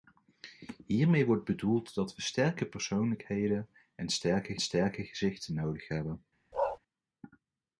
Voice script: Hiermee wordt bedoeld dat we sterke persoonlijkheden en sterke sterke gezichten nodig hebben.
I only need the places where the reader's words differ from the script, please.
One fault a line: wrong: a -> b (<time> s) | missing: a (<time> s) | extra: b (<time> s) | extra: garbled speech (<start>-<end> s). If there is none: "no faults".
no faults